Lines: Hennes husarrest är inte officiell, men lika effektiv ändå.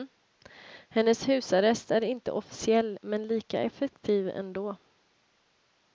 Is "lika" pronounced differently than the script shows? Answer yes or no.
no